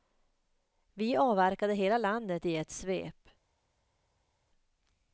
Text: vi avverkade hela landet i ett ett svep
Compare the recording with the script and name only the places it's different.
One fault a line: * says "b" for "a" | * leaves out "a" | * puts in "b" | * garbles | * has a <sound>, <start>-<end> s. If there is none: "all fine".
* leaves out "ett"